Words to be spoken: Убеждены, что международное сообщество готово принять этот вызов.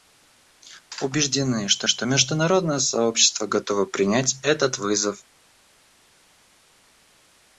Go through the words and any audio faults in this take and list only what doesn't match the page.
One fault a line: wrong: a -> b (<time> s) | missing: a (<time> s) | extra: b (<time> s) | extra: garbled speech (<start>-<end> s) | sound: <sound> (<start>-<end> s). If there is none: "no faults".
extra: что (1.9 s)